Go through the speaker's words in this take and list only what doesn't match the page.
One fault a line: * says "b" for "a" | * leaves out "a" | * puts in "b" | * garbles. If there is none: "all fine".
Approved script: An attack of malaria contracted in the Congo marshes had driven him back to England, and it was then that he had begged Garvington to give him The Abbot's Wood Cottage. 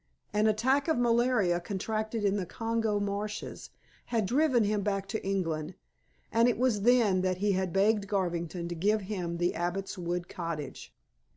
all fine